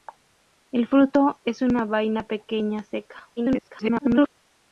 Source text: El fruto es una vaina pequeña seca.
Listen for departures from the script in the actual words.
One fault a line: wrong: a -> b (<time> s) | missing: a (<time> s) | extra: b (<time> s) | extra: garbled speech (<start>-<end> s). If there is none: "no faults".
extra: garbled speech (3.4-4.3 s)